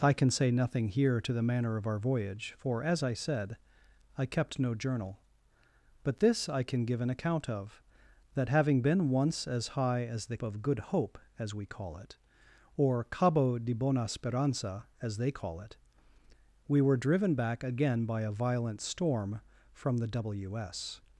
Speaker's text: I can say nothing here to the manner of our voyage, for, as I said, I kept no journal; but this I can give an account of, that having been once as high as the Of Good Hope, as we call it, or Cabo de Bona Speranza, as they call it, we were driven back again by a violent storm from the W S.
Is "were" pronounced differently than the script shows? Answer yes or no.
no